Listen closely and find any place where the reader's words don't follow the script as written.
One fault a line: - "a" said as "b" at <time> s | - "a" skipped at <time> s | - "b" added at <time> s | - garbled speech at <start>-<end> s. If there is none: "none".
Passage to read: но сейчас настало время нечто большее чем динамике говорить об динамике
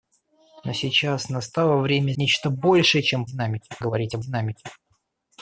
none